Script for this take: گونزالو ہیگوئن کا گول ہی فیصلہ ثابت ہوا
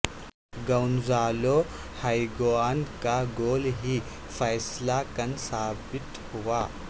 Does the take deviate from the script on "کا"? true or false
false